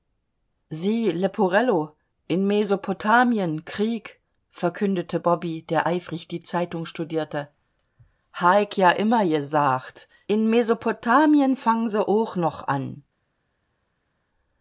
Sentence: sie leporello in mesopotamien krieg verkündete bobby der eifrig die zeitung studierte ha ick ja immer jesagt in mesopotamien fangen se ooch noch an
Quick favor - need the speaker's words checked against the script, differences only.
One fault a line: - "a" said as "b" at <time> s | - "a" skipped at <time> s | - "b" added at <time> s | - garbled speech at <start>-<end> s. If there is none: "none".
none